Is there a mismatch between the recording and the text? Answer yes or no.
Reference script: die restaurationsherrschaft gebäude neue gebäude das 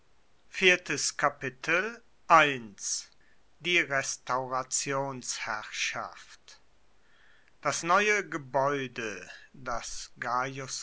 yes